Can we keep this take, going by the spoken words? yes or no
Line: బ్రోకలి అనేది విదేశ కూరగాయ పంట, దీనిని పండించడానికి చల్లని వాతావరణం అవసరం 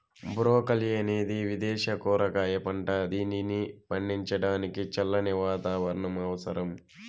yes